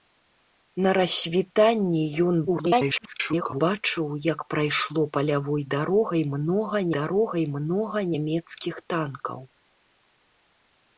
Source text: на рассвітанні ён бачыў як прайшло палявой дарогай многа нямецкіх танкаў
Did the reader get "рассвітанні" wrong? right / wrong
right